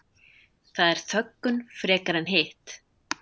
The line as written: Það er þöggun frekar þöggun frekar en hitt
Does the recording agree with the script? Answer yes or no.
no